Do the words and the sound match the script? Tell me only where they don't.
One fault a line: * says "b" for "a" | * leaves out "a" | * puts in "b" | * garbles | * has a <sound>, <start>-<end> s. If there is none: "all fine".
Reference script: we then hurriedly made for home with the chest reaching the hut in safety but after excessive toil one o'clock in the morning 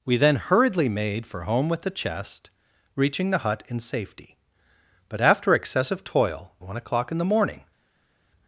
all fine